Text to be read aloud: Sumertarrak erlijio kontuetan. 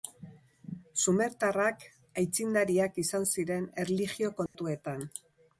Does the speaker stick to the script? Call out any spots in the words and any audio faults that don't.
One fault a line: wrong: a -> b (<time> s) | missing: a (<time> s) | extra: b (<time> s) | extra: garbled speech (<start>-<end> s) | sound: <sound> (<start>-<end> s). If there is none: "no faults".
extra: aitzindariak izan ziren (2.2 s)
sound: dropout (4.5-4.5 s)